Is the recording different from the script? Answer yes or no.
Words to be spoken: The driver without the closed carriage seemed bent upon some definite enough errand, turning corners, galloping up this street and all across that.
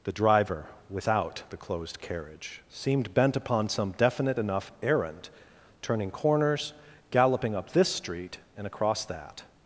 yes